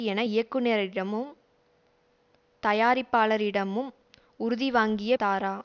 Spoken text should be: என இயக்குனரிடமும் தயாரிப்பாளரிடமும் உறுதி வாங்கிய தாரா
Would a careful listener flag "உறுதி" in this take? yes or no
no